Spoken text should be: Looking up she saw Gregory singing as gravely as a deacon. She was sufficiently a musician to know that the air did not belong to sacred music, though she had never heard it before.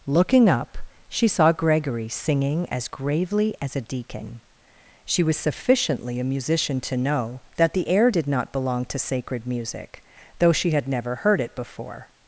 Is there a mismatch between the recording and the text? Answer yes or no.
no